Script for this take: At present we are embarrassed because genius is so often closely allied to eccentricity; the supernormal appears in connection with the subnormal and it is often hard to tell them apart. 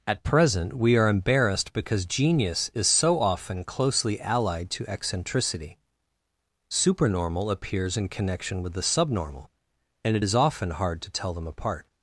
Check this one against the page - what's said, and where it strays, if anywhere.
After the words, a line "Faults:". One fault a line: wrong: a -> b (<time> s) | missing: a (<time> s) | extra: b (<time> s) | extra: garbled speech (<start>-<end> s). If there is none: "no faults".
At present we are embarrassed because genius is so often closely allied to eccentricity; supernormal appears in connection with the subnormal and it is often hard to tell them apart.
Faults:
missing: the (5.8 s)